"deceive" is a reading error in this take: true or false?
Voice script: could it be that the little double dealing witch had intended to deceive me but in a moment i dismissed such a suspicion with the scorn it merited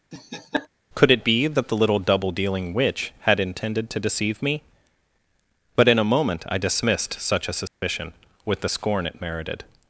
false